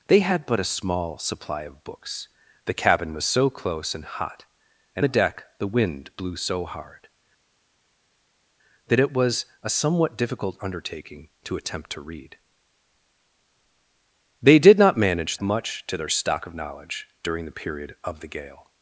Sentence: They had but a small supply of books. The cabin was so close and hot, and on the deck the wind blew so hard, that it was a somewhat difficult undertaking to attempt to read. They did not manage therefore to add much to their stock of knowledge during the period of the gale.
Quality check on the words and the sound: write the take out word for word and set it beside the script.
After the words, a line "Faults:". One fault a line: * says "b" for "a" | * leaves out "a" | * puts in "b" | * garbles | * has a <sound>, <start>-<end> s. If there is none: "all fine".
They had but a small supply of books. The cabin was so close and hot, and the deck the wind blew so hard, that it was a somewhat difficult undertaking to attempt to read. They did not manage much to their stock of knowledge during the period of the gale.
Faults:
* leaves out "on"
* leaves out "therefore to add"